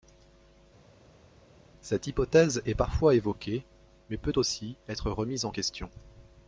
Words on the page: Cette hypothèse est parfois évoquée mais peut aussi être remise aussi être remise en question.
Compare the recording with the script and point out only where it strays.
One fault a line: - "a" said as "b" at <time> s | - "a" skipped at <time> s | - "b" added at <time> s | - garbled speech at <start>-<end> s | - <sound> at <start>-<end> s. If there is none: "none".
- "aussi être remise" skipped at 5.5 s